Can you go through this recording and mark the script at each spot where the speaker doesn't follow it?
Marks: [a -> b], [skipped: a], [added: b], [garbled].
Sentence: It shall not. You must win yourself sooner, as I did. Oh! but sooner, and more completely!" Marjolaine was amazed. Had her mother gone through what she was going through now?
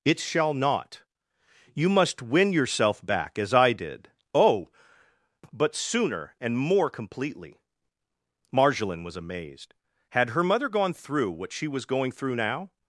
It shall not. You must win yourself [sooner, -> back] as I did. Oh! but sooner, and more completely!" Marjolaine was amazed. Had her mother gone through what she was going through now?